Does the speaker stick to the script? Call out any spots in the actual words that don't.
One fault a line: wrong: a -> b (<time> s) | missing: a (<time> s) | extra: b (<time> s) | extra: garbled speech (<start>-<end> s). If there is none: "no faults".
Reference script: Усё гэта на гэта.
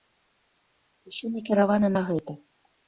wrong: гэта -> накіравана (1.4 s)